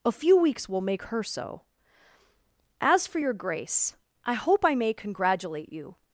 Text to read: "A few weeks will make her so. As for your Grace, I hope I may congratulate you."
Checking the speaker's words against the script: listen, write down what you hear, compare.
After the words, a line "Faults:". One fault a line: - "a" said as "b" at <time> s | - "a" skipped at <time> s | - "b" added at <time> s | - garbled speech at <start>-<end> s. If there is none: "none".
"A few weeks will make her so. As for your Grace, I hope I may congratulate you."
Faults:
none